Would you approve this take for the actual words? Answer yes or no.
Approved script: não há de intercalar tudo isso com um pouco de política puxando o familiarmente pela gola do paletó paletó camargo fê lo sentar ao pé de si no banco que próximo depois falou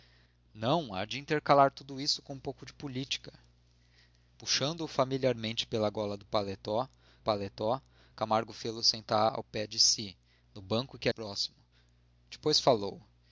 yes